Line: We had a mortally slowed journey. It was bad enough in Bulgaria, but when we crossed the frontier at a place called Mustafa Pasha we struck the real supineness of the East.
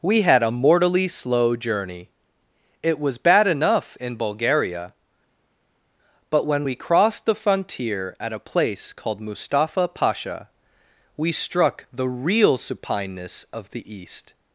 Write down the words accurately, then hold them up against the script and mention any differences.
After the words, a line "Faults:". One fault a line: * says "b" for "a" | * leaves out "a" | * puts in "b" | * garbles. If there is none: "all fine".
We had a mortally slow journey. It was bad enough in Bulgaria, but when we crossed the frontier at a place called Mustafa Pasha we struck the real supineness of the East.
Faults:
* says "slow" for "slowed"